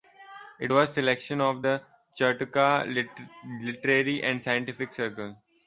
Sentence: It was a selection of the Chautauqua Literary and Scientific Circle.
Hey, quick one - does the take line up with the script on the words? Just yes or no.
yes